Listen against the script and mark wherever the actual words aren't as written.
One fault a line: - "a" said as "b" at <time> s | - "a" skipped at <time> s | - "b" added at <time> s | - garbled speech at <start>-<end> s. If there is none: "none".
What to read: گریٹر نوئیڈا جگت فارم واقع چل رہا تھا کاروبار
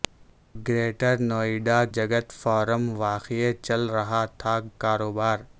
none